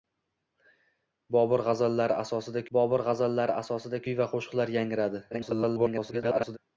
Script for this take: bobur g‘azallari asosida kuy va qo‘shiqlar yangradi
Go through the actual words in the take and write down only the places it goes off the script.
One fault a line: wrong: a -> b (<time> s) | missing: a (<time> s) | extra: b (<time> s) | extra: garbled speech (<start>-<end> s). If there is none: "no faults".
extra: bobur g‘azallari asosida (2.8 s)
extra: garbled speech (5.3-6.6 s)